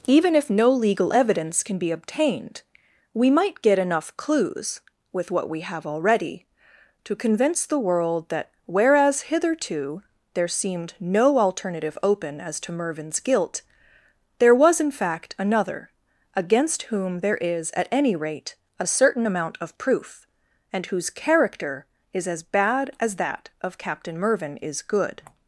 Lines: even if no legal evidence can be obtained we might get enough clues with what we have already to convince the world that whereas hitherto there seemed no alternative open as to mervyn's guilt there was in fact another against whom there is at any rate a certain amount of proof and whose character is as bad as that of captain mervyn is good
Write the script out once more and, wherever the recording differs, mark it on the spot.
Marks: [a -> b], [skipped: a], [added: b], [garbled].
even if no legal evidence can be obtained we might get enough clues with what we have already to convince the world that whereas hitherto there seemed no alternative open as to mervyn's guilt there was in fact another against whom there is at any rate a certain amount of proof and whose character is as bad as that of captain mervyn is good